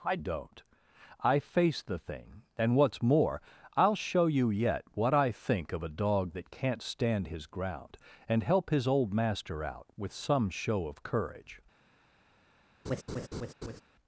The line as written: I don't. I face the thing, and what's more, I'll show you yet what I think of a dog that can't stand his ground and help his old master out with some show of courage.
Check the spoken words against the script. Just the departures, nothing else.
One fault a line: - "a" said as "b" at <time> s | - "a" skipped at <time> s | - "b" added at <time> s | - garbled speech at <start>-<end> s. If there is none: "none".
none